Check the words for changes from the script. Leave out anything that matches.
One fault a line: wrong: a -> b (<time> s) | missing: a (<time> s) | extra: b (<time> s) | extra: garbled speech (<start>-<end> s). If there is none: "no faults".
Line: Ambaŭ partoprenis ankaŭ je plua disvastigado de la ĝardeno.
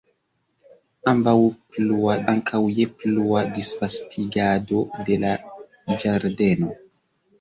wrong: partoprenis -> plua (1.7 s)